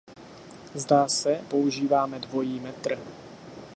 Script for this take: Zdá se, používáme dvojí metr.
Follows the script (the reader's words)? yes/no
yes